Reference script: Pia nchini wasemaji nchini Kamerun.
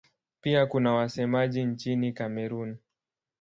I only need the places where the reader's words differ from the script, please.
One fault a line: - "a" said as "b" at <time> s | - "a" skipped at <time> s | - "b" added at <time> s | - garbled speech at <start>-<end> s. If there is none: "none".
- "nchini" said as "kuna" at 0.7 s